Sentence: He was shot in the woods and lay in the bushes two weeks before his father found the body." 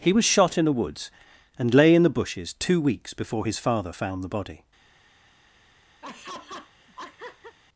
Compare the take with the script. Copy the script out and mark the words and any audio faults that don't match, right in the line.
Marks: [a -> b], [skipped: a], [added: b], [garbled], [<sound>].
He was shot in the woods and lay in the bushes two weeks before his father found the body." [laugh]